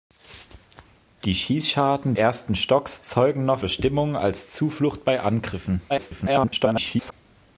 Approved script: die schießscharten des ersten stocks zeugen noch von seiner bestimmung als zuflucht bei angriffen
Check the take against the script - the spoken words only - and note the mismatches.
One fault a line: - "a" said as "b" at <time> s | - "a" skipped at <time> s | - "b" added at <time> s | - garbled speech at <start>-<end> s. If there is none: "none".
- "des" skipped at 2.1 s
- "von seiner" skipped at 3.6 s
- garbled speech at 5.9-7.1 s